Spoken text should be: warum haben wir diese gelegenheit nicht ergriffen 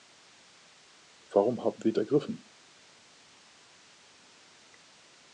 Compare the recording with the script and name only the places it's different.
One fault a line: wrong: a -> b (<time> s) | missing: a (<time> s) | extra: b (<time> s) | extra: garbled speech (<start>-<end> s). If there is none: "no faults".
missing: diese gelegenheit nicht (1.9 s)